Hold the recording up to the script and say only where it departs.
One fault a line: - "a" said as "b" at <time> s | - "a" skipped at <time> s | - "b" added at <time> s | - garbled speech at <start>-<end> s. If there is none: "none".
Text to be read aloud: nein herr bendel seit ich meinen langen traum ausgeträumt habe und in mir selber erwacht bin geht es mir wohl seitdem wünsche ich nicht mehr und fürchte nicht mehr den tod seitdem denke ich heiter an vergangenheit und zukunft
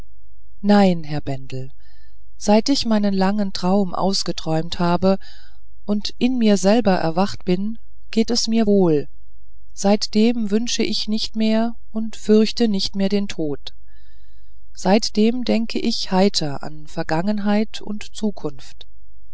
none